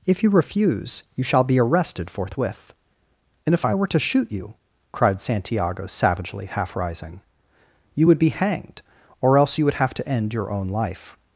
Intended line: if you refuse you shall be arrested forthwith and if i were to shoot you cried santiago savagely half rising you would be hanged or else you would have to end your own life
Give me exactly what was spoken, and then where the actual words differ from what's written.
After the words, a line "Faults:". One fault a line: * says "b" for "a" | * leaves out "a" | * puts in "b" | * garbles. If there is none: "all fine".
if you refuse you shall be arrested forthwith and if i were to shoot you cried santiago savagely half rising you would be hanged or else you would have to end your own life
Faults:
all fine